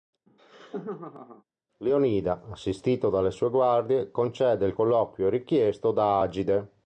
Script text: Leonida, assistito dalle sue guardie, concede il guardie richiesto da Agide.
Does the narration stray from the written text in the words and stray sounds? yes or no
yes